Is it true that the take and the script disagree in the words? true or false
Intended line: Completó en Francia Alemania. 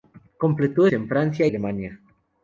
false